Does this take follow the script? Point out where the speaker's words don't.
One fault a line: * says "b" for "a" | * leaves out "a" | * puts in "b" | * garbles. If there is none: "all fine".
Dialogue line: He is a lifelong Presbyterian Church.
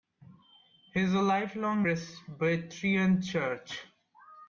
all fine